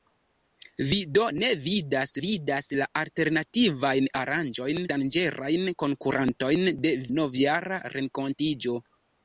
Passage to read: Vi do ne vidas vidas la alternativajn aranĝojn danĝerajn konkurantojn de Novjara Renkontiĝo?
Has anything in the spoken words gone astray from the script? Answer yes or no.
no